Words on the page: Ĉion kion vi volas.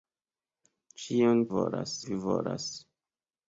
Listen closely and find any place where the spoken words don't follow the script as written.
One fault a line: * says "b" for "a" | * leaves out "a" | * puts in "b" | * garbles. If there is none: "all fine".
* says "volas" for "kion"